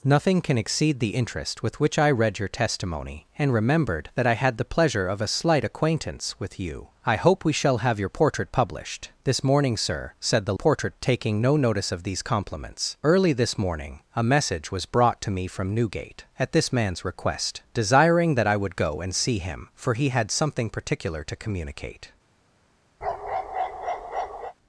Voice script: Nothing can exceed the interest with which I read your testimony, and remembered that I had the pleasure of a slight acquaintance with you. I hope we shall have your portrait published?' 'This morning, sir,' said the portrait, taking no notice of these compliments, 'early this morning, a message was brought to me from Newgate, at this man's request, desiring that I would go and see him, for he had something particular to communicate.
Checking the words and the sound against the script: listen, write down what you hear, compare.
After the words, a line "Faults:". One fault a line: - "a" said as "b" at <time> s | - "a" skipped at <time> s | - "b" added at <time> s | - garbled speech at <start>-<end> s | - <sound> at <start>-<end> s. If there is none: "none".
Nothing can exceed the interest with which I read your testimony, and remembered that I had the pleasure of a slight acquaintance with you. I hope we shall have your portrait published?' 'This morning, sir,' said the portrait, taking no notice of these compliments, 'early this morning, a message was brought to me from Newgate, at this man's request, desiring that I would go and see him, for he had something particular to communicate.
Faults:
- bark at 23.0-24.5 s